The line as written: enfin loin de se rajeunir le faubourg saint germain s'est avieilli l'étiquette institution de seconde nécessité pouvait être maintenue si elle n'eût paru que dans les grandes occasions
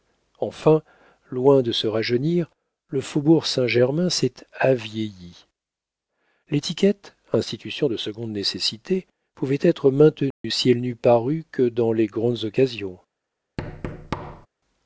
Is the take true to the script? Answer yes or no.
yes